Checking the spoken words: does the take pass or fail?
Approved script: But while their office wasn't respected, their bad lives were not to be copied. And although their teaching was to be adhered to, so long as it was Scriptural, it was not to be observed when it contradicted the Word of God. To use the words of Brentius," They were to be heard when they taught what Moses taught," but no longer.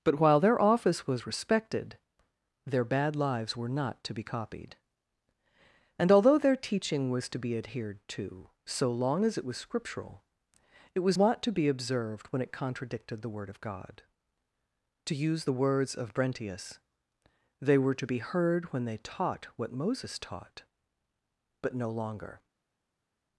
fail